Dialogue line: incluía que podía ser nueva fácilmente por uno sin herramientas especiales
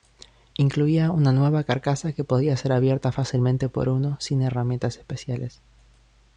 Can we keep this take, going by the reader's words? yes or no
no